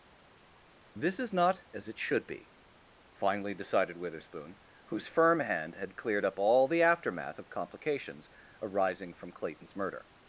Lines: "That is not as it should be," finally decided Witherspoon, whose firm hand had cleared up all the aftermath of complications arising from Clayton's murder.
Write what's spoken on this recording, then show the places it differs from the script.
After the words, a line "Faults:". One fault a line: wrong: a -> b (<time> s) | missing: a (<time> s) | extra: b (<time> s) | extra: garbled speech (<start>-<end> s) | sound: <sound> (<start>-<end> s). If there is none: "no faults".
"This is not as it should be," finally decided Witherspoon, whose firm hand had cleared up all the aftermath of complications arising from Clayton's murder.
Faults:
wrong: That -> This (1.0 s)